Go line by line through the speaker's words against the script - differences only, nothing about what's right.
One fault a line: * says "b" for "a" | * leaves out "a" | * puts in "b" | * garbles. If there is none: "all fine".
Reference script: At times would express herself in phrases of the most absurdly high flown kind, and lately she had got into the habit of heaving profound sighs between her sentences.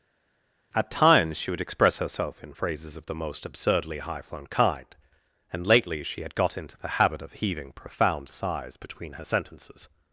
* puts in "she"